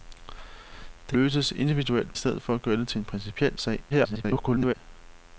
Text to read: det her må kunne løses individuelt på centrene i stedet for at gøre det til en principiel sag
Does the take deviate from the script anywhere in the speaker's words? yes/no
yes